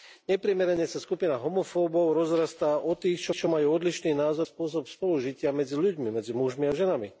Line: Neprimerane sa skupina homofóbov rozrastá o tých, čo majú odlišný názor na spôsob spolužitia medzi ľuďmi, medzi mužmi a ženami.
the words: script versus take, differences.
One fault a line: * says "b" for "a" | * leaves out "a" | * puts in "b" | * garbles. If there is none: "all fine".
* puts in "čo"
* leaves out "na"